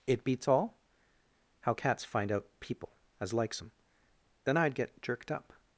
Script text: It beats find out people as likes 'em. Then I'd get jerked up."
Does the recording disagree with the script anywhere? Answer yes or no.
yes